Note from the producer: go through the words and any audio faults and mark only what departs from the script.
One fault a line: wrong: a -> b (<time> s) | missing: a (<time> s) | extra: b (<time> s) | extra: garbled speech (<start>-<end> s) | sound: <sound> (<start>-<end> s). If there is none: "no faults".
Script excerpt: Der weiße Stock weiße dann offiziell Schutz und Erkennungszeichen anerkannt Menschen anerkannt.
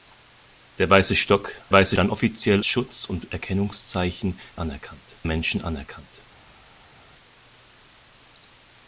no faults